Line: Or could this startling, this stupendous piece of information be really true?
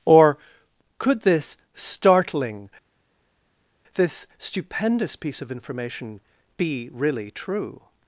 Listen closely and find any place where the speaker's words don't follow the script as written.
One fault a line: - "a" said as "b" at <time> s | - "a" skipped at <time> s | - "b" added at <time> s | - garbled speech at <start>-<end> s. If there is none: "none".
none